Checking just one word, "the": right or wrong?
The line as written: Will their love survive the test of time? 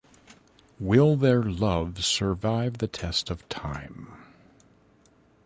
right